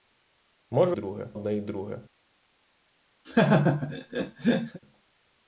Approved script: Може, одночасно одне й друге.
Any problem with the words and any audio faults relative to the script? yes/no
yes